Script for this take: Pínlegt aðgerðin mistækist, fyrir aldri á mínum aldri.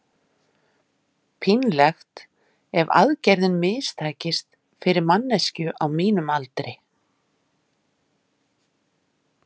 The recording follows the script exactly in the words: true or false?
false